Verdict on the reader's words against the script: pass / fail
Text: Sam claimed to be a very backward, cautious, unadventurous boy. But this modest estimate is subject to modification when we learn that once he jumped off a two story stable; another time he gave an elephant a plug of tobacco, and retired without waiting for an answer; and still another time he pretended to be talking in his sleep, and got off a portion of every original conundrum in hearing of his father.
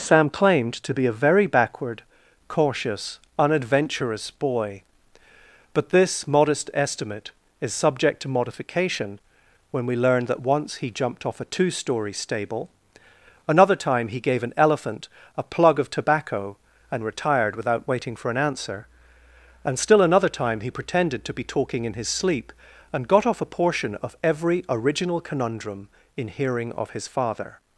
pass